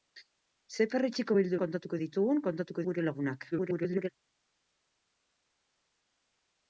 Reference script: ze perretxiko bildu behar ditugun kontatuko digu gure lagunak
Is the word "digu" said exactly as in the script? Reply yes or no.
no